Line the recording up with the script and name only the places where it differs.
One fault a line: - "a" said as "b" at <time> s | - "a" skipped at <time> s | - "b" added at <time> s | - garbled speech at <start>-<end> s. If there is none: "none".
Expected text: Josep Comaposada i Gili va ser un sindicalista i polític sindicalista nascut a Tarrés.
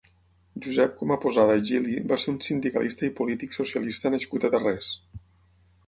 - "sindicalista" said as "socialista" at 3.6 s